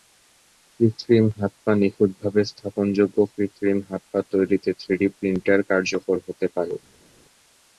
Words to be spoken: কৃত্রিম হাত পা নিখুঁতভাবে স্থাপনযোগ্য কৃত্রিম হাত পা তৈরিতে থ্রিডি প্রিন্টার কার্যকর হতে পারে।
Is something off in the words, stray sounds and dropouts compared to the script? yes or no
no